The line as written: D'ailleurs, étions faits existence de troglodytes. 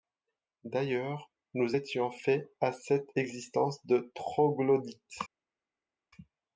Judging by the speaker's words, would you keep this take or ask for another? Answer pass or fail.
fail